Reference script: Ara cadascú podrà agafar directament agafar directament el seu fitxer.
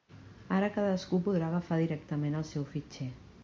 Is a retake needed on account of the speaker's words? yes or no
yes